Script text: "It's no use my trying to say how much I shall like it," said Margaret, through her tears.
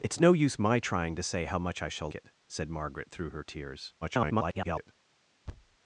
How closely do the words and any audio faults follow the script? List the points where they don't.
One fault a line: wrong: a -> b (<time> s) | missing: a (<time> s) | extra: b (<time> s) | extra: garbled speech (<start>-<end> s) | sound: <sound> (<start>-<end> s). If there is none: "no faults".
missing: like (2.1 s)
extra: garbled speech (4.0-4.9 s)
sound: thud (5.5-5.8 s)